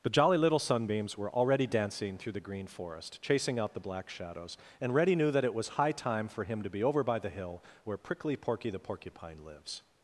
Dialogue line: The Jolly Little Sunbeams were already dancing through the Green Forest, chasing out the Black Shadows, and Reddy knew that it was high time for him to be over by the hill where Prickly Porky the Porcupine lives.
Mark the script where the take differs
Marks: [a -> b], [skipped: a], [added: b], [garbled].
The Jolly Little Sunbeams were already dancing through the Green Forest, chasing out the Black Shadows, and Reddy knew that it was high time for him to be over by the hill where Prickly Porky the Porcupine lives.